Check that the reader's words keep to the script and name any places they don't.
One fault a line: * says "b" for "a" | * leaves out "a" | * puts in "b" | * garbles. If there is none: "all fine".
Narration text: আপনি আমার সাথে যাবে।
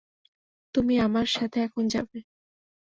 * says "তুমি" for "আপনি"
* puts in "এখন"